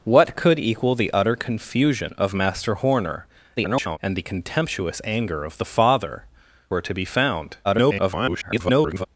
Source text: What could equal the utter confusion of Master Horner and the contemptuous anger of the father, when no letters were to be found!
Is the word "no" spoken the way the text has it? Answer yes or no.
no